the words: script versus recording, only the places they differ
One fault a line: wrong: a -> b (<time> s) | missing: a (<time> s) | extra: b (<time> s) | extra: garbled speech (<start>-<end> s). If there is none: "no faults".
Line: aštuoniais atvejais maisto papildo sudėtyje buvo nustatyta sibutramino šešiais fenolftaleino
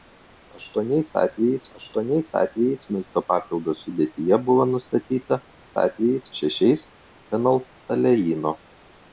extra: aštuoniais atvejais (1.8 s)
wrong: sibutramino -> atvejais (5.8 s)